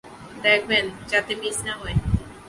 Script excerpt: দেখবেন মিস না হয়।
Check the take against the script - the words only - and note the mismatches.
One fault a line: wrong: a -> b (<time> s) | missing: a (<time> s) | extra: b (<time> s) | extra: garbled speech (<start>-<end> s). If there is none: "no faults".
extra: যাতে (1.1 s)